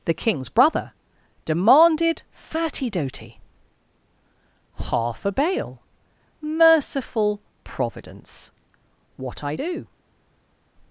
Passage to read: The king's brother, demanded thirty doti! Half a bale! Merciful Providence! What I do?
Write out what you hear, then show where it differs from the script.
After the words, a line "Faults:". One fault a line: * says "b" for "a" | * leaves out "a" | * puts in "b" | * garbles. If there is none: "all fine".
The king's brother, demanded thirty doti! Half a bale! Merciful Providence! What I do?
Faults:
all fine